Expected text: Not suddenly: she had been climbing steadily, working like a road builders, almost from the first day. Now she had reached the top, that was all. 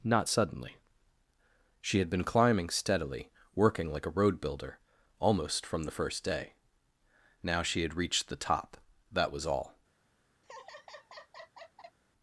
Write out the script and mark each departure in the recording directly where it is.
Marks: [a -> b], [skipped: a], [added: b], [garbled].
Not suddenly: she had been climbing steadily, working like a road [builders, -> builder] almost from the first day. Now she had reached the top, that was all.